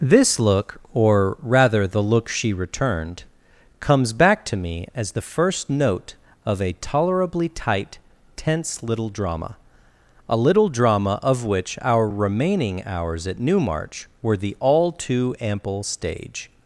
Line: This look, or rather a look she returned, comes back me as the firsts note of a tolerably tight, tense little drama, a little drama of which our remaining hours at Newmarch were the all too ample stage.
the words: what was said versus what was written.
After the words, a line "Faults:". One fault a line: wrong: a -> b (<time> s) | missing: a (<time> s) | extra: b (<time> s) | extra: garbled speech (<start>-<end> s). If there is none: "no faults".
This look, or rather the look she returned, comes back to me as the first note of a tolerably tight, tense little drama, a little drama of which our remaining hours at Newmarch were the all too ample stage.
Faults:
wrong: a -> the (1.9 s)
extra: to (4.5 s)
wrong: firsts -> first (5.2 s)